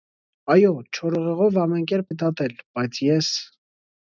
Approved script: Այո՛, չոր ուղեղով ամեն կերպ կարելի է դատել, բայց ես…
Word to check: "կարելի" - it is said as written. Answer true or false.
false